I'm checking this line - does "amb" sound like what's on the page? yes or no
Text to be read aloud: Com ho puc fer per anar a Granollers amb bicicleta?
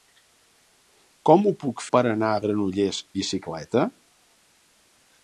no